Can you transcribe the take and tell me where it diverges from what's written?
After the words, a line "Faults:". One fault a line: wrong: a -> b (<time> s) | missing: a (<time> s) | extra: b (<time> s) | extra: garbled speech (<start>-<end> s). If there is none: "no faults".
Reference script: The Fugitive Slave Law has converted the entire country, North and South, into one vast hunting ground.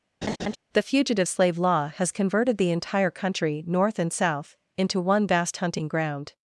The Fugitive Slave Law has converted the entire country, North and South, into one vast hunting ground.
Faults:
no faults